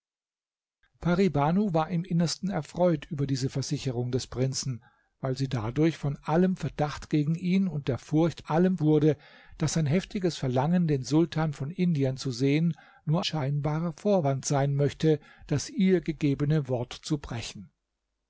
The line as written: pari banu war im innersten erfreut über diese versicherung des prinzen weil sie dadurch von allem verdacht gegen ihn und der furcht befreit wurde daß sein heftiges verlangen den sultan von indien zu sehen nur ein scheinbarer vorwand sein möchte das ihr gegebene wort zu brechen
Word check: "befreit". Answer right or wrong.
wrong